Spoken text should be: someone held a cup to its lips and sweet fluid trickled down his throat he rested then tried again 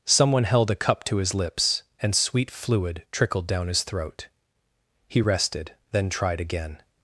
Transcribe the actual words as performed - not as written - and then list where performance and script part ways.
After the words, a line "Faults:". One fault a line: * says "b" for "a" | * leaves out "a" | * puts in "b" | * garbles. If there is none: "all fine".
someone held a cup to his lips and sweet fluid trickled down his throat he rested then tried again
Faults:
* says "his" for "its"